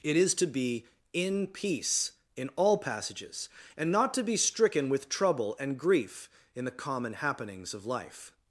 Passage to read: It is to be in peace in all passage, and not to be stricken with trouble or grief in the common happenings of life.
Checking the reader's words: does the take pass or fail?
fail